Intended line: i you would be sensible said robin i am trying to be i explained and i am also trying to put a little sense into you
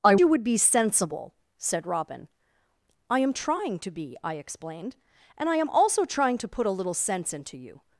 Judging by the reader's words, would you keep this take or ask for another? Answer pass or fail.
pass